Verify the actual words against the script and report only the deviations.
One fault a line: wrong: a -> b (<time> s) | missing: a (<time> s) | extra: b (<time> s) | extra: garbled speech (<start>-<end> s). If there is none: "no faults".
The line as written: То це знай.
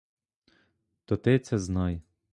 extra: ти (1.2 s)